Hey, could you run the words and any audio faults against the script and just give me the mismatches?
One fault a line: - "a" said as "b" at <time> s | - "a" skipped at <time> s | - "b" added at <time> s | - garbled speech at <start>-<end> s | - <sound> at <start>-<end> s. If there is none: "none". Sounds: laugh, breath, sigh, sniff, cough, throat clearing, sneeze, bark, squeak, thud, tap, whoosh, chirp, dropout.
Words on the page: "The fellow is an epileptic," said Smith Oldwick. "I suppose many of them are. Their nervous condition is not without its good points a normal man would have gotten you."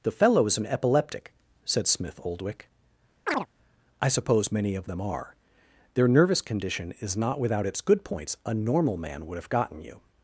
- chirp at 3.3-3.5 s